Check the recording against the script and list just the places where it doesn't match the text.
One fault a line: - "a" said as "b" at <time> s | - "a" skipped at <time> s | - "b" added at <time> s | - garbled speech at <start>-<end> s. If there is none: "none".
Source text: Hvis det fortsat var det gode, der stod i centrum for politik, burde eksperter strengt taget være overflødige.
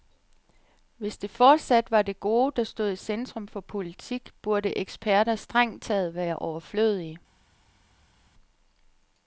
none